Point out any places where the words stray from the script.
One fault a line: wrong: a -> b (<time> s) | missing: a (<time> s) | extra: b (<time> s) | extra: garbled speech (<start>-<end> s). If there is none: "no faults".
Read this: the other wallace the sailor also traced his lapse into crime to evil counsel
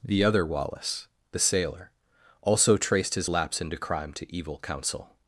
no faults